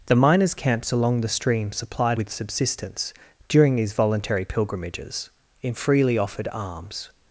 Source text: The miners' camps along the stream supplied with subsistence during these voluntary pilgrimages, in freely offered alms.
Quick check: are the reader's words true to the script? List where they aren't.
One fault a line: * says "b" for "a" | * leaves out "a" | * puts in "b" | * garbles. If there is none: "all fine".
all fine